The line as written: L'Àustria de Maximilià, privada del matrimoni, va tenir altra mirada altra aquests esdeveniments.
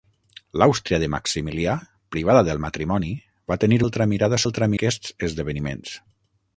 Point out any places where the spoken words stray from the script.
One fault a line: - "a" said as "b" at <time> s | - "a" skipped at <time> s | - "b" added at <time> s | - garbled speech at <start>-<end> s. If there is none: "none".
none